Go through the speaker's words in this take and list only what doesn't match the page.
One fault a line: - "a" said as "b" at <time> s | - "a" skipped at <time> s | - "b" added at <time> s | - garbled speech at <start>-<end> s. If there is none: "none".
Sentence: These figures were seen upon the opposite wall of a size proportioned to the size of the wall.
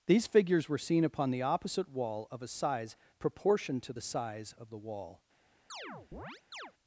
none